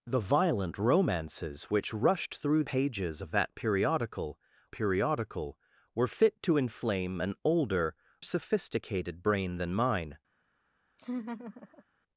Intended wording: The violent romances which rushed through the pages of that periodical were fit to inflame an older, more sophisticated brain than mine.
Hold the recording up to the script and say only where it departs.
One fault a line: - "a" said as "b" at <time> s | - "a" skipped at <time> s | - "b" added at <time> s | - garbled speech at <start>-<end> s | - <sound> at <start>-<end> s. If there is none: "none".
- "the" skipped at 2.6 s
- "periodical" added at 4.7 s
- "more" skipped at 8.0 s
- laugh at 11.0-11.8 s